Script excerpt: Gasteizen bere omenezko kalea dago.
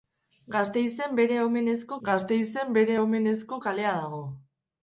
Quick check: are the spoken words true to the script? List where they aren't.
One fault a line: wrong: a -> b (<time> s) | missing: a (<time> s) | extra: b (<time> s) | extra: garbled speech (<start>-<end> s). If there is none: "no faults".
extra: gasteizen bere omenezko (2.1 s)